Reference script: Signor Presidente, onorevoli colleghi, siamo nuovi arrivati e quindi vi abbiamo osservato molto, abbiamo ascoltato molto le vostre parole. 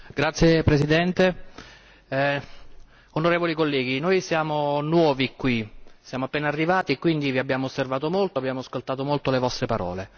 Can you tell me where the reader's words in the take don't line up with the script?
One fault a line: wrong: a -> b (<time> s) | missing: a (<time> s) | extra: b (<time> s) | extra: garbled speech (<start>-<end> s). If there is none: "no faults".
extra: noi (4.0 s)
extra: qui siamo appena (5.3 s)